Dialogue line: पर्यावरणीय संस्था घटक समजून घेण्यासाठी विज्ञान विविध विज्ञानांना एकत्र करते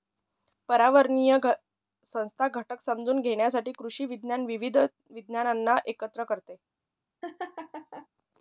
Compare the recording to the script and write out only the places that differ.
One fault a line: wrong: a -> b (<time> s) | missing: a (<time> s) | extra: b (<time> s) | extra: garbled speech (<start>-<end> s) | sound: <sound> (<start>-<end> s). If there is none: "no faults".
extra: कृषी (3.7 s)
sound: laugh (7.2-8.1 s)